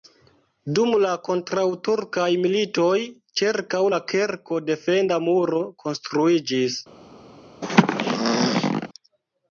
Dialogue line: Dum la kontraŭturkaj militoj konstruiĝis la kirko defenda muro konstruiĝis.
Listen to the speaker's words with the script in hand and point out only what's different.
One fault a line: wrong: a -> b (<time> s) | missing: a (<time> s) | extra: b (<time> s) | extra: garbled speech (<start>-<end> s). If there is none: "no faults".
wrong: konstruiĝis -> ĉirkaŭ (3.4 s)